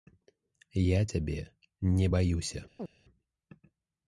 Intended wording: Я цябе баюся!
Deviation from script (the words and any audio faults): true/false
true